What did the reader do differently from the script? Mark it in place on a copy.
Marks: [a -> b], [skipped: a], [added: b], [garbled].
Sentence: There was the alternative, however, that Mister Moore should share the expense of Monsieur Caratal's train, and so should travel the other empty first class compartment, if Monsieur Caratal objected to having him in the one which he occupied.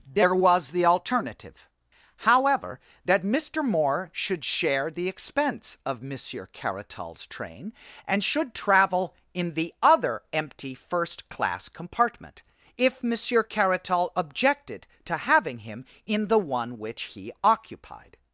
There was the alternative, however, that Mister Moore should share the expense of Monsieur Caratal's train, and [skipped: so] should travel [added: in] the other empty first class compartment, if Monsieur Caratal objected to having him in the one which he occupied.